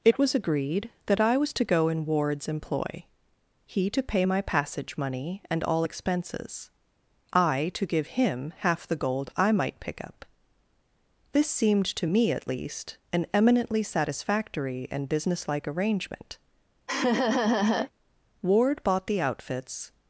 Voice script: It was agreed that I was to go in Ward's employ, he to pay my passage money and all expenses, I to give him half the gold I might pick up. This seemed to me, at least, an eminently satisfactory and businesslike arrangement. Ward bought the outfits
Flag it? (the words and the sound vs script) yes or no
yes